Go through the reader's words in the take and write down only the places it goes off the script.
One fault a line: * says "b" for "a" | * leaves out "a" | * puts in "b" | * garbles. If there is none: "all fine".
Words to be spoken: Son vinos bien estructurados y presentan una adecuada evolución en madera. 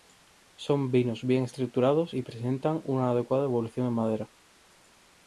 all fine